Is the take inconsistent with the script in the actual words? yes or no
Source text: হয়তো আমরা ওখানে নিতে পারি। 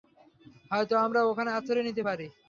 yes